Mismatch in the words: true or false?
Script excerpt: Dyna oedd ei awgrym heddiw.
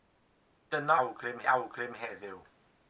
true